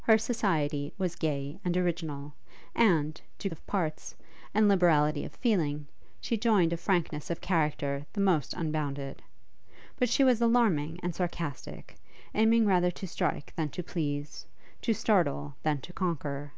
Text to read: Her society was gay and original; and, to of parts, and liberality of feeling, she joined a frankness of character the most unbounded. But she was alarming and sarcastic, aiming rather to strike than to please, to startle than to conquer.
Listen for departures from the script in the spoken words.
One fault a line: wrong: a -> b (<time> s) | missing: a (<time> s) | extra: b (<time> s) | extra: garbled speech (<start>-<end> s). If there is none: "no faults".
no faults